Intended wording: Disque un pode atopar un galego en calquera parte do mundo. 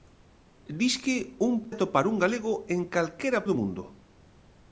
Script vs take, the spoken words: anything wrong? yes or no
yes